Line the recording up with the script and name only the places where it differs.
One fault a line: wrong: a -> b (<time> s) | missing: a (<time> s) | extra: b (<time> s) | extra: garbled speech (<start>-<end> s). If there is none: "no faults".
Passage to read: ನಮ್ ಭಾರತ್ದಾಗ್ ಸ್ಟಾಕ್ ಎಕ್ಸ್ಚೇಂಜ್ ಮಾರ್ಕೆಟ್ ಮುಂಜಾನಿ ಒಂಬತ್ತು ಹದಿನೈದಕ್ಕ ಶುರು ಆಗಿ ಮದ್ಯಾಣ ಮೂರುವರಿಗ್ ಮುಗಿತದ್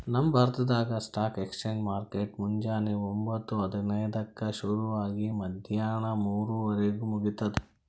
no faults